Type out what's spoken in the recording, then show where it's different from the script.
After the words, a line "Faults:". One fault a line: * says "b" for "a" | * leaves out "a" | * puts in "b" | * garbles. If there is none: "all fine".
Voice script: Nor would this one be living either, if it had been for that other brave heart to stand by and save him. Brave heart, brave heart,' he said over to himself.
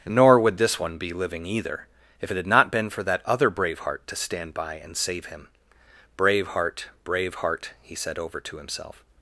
Nor would this one be living either, if it had not been for that other brave heart to stand by and save him. Brave heart, brave heart,' he said over to himself.
Faults:
* puts in "not"